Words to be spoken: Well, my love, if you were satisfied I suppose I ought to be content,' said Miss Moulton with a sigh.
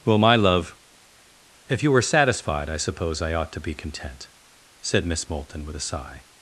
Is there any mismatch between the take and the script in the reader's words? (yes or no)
no